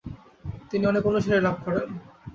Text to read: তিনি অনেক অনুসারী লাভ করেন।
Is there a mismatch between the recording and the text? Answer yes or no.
no